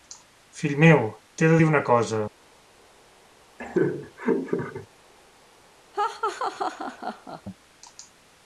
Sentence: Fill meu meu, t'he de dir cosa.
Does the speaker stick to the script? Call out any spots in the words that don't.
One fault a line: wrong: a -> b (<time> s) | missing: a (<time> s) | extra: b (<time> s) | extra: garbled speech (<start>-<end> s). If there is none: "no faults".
missing: meu (1.0 s)
extra: una (1.7 s)